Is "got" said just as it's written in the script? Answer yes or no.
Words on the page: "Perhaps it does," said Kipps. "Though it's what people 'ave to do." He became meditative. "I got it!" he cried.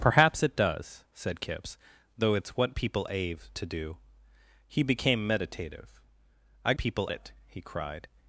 no